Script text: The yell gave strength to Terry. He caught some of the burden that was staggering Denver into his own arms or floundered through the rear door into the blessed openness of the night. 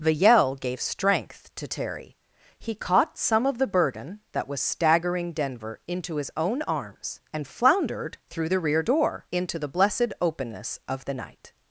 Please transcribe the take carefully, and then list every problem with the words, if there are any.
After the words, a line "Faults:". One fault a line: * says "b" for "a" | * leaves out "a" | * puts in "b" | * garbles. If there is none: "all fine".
The yell gave strength to Terry. He caught some of the burden that was staggering Denver into his own arms and floundered through the rear door into the blessed openness of the night.
Faults:
* says "and" for "or"